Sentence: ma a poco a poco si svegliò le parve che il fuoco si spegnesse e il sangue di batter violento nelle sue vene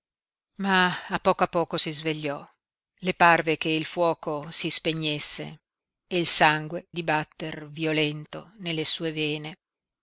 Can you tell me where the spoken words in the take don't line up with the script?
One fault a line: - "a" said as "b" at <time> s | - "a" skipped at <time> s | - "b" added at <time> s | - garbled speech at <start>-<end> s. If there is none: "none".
none